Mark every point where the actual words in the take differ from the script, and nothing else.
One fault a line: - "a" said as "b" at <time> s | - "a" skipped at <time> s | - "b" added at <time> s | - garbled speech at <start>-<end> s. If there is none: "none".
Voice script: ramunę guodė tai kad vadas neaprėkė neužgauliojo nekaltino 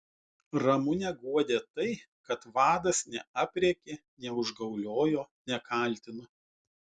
none